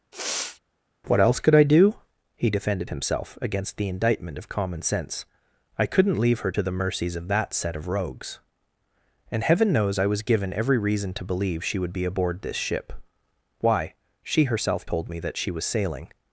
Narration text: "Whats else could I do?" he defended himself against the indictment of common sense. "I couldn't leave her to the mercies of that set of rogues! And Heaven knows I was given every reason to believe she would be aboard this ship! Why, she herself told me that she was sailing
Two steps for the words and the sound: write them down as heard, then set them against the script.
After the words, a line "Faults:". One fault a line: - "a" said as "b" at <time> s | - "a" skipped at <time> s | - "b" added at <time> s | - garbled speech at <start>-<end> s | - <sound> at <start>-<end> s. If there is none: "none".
"What else could I do?" he defended himself against the indictment of common sense. "I couldn't leave her to the mercies of that set of rogues! And Heaven knows I was given every reason to believe she would be aboard this ship! Why, she herself told me that she was sailing
Faults:
- sniff at 0.1-0.6 s
- "Whats" said as "What" at 1.1 s